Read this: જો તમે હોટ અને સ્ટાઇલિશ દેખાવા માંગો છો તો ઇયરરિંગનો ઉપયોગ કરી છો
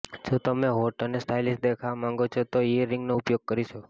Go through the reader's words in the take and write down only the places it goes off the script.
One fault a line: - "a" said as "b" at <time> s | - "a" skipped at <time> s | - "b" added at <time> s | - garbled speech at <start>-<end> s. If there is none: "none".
none